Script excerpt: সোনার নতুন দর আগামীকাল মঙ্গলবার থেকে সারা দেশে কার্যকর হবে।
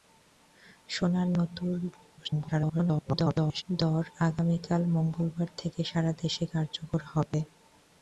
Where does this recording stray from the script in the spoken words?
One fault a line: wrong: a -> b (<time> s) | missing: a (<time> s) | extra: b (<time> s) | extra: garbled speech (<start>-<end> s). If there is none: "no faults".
extra: garbled speech (2.2-3.6 s)